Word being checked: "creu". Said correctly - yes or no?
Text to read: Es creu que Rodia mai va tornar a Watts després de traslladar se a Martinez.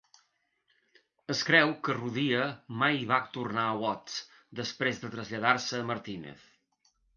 yes